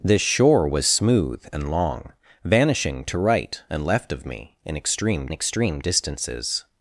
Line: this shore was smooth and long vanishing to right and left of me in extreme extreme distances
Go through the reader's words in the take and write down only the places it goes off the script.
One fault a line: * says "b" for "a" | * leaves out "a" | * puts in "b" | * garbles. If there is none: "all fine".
all fine